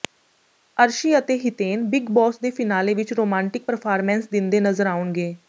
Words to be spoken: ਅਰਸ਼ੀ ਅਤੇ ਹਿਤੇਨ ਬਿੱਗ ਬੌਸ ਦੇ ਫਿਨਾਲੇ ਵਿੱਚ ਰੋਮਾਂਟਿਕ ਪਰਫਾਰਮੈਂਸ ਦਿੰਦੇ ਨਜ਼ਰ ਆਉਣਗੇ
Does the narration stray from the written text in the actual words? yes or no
no